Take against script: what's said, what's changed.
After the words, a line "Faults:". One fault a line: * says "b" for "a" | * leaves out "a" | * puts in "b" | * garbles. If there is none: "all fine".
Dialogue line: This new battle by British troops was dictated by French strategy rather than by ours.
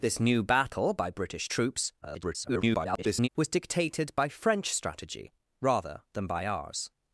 This new battle by British troops [garbled] was dictated by French strategy rather than by ours.
Faults:
* garbles